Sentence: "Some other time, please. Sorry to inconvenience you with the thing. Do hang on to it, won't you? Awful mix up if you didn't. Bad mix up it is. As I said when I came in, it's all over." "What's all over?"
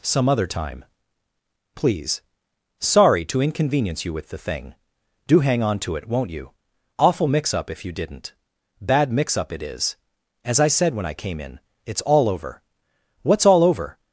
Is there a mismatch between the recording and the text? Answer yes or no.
no